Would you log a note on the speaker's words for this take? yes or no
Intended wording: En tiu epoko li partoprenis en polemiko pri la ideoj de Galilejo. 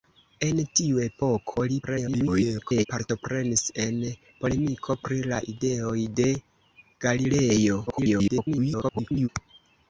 yes